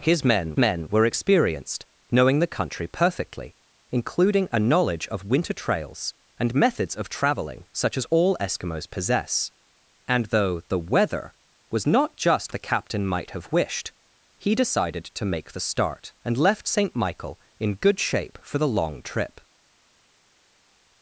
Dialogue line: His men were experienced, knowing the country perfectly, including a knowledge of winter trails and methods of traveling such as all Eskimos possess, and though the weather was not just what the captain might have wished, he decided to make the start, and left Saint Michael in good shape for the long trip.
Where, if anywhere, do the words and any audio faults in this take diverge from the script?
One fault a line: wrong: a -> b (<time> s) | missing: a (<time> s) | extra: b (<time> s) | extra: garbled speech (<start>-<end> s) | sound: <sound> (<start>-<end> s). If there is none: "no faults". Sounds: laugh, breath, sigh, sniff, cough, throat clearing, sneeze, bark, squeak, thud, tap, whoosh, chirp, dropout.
extra: men (0.6 s)
missing: what (12.5 s)